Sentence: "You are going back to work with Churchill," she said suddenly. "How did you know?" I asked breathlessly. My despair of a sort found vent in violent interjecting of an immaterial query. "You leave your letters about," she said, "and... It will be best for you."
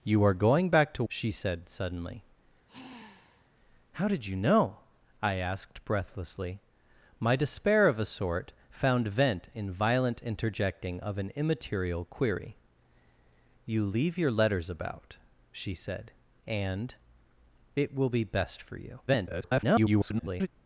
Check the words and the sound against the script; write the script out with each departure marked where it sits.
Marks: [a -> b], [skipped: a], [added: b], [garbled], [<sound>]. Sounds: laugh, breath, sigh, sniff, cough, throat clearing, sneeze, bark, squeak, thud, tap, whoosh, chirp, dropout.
"You are going back to [skipped: work with Churchill,"] she said suddenly. [sigh] "How did you know?" I asked breathlessly. My despair of a sort found vent in violent interjecting of an immaterial query. "You leave your letters about," she said, "and... It will be best for you." [garbled]